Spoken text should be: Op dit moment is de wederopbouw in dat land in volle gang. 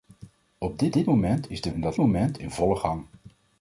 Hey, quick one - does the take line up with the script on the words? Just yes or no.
no